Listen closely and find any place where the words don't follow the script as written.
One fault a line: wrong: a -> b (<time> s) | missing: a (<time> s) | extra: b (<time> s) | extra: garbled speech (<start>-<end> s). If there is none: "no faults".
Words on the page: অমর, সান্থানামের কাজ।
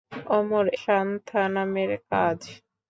no faults